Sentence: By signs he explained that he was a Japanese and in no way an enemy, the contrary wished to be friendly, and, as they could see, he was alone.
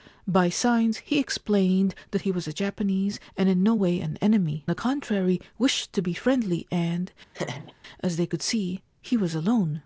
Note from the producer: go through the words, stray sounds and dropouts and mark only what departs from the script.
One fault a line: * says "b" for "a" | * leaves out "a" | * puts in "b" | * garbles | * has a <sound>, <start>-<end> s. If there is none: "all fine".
* has a laugh, 7.3-7.7 s